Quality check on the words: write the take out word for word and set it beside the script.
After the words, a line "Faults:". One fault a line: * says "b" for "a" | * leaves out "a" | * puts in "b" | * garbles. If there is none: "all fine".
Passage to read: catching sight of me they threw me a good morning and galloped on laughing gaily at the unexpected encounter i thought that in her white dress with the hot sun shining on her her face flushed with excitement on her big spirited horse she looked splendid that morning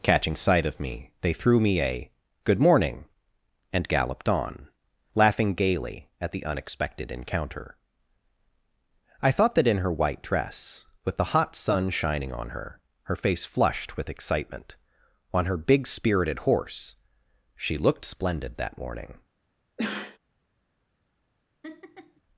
catching sight of me they threw me a good morning and galloped on laughing gaily at the unexpected encounter i thought that in her white dress with the hot sun shining on her her face flushed with excitement on her big spirited horse she looked splendid that morning
Faults:
all fine